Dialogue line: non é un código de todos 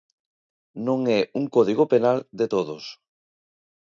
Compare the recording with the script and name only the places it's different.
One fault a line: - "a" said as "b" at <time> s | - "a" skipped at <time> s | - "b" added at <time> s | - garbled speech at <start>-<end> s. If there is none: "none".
- "penal" added at 1.9 s